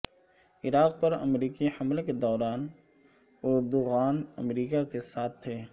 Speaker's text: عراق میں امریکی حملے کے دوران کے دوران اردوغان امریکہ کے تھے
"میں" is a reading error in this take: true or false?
true